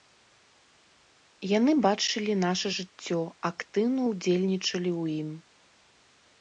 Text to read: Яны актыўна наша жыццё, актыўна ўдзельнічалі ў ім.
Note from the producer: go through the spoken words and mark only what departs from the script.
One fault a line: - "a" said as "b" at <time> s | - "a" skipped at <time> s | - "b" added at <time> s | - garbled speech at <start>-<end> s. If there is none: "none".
- "актыўна" said as "бачылі" at 1.9 s